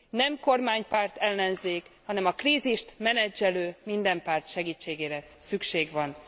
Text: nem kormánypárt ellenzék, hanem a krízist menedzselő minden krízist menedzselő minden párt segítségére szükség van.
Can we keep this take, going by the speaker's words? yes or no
no